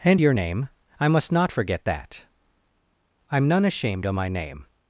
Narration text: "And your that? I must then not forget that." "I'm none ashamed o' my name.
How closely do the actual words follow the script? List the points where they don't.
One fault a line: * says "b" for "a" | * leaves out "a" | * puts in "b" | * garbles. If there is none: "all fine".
* says "name" for "that"
* leaves out "then"